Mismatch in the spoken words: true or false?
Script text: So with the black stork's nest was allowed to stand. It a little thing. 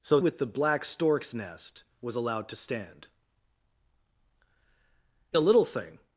false